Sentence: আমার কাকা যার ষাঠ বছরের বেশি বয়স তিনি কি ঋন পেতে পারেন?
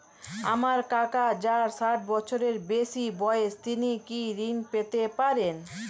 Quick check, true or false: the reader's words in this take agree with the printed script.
true